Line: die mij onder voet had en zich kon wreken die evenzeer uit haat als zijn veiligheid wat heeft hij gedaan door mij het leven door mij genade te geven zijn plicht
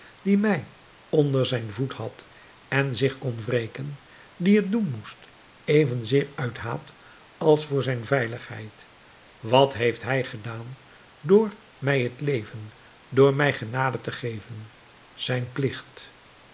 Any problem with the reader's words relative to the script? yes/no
yes